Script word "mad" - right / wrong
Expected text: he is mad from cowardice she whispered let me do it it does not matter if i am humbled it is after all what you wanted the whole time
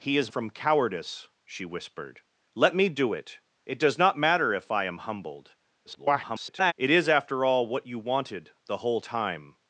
wrong